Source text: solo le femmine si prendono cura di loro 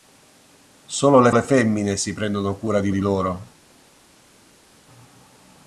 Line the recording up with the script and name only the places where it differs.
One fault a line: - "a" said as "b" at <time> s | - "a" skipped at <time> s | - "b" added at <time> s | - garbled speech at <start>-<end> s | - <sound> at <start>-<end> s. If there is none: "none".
- "le" added at 1.3 s
- "di" added at 2.9 s